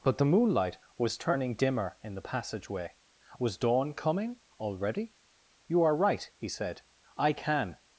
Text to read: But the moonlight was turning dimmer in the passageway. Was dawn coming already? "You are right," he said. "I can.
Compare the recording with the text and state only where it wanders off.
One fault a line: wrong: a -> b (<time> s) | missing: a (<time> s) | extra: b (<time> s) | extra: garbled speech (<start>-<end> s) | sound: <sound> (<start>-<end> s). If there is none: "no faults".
no faults